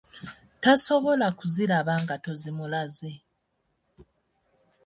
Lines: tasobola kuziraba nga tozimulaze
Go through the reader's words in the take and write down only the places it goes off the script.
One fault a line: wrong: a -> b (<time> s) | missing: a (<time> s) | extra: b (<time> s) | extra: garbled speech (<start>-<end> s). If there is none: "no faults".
no faults